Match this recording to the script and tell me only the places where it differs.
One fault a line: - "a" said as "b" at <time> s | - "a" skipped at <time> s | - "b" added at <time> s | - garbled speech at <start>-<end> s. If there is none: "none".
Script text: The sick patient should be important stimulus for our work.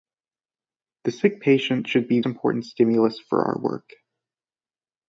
none